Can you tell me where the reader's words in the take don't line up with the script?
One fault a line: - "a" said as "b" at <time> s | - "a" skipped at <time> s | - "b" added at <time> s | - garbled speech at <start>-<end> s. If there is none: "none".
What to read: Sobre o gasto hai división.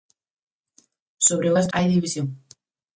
none